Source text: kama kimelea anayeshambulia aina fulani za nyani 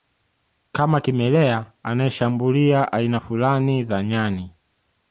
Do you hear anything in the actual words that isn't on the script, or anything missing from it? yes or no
no